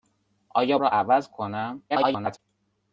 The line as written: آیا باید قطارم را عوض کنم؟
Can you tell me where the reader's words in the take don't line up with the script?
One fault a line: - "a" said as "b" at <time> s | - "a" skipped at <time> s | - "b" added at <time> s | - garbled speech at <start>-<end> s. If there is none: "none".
- "باید قطارم" skipped at 0.8 s
- garbled speech at 1.9-2.4 s